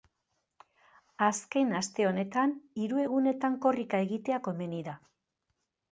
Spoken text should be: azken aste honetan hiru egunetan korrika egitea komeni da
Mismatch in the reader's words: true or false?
false